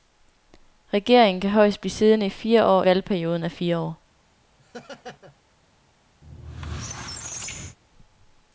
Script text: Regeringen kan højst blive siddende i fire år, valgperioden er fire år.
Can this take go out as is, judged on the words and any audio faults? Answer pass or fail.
fail